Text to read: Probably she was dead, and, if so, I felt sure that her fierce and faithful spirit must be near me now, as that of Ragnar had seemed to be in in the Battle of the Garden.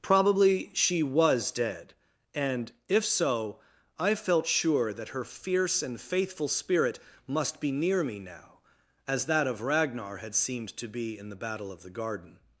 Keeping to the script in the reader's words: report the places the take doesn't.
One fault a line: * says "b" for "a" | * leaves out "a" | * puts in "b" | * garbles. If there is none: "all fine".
* leaves out "in"